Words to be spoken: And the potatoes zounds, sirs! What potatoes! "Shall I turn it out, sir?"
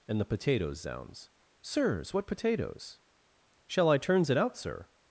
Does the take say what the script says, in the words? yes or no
no